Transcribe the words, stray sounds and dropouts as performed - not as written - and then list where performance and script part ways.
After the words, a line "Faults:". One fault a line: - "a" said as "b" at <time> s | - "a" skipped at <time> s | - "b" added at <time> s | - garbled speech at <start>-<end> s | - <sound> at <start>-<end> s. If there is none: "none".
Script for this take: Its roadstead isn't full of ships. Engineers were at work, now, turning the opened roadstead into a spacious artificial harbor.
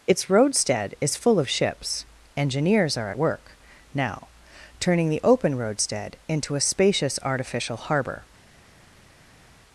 Its roadstead is full of ships. Engineers are at work, now, turning the open roadstead into a spacious artificial harbor.
Faults:
- "isn't" said as "is" at 1.0 s
- "were" said as "are" at 3.0 s
- "opened" said as "open" at 5.2 s